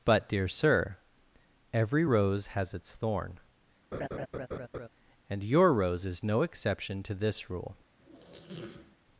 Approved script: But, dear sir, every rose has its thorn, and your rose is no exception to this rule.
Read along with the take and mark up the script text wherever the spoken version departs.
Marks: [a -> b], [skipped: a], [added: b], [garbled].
But, dear sir, every rose has its thorn, and your rose is no exception to this rule.